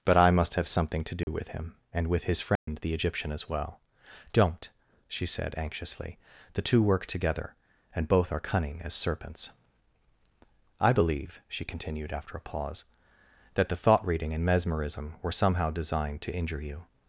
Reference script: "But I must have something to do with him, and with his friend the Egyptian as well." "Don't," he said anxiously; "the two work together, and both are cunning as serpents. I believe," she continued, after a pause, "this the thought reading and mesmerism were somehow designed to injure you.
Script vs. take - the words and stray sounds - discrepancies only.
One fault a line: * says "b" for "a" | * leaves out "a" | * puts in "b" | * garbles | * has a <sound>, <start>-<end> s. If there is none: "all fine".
* has a dropout, 1.2-1.3 s
* has a dropout, 2.6-2.7 s
* says "she" for "he"
* says "that" for "this"